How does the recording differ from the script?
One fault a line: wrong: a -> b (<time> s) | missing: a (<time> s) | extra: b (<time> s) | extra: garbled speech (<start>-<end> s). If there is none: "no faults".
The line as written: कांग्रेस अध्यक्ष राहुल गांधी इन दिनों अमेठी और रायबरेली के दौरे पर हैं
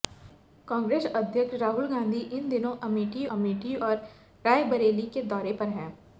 extra: अमेठी (3.3 s)